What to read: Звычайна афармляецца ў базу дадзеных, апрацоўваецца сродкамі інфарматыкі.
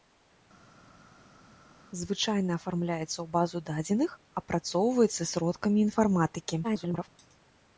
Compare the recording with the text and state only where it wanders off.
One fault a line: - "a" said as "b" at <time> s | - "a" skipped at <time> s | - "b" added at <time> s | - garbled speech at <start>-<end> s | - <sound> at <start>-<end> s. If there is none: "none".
- garbled speech at 6.6-7.1 s